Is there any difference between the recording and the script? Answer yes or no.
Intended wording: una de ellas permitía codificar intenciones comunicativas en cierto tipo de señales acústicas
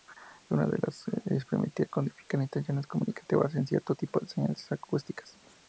no